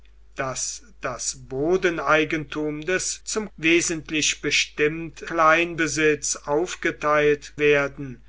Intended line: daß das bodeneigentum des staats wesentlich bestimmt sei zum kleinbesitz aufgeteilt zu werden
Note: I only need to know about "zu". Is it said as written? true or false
false